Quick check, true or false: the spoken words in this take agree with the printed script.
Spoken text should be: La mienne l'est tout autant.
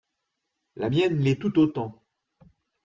true